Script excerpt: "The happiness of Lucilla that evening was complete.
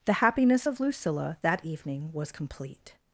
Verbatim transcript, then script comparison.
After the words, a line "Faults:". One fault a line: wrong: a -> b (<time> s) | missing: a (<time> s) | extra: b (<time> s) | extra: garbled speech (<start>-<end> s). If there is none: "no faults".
"The happiness of Lucilla that evening was complete.
Faults:
no faults